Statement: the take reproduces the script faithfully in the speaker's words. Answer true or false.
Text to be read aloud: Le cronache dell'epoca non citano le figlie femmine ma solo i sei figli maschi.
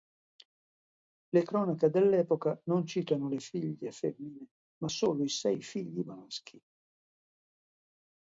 true